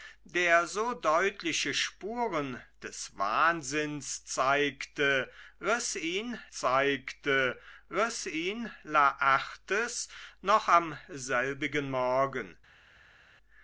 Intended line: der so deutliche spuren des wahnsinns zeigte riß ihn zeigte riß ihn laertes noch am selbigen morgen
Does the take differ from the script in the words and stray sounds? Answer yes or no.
no